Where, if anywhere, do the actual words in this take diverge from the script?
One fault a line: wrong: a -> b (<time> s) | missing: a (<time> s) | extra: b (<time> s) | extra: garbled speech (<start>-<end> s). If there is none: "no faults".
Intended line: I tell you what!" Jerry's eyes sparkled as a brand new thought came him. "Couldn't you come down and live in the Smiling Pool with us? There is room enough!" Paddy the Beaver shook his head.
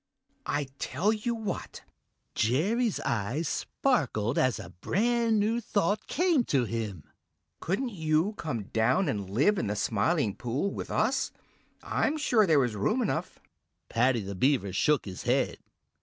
extra: to (6.5 s)
extra: I'm sure (11.8 s)